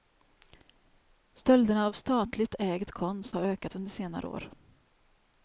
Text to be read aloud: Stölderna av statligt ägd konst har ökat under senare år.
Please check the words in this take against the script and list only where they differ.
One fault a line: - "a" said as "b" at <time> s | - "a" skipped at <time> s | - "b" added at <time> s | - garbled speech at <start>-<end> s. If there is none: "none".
none